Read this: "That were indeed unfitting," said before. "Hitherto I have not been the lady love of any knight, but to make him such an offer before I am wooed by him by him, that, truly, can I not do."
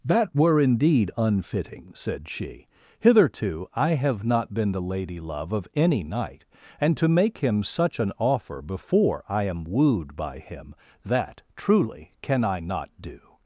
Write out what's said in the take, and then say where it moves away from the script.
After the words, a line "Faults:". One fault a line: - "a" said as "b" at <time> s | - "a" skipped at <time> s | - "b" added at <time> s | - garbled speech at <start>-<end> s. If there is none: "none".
"That were indeed unfitting," said she. "Hitherto I have not been the lady love of any knight, and to make him such an offer before I am wooed by him, that, truly, can I not do."
Faults:
- "before" said as "she" at 2.3 s
- "but" said as "and" at 6.8 s
- "by him" skipped at 10.8 s